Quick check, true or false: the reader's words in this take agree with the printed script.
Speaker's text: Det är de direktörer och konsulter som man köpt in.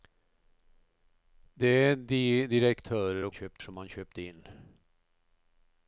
false